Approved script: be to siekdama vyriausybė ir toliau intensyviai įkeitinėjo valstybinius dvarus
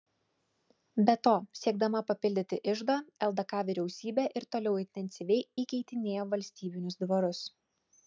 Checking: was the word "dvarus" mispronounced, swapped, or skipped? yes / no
no